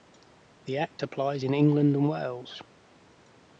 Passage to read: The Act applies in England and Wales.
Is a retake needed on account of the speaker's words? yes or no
no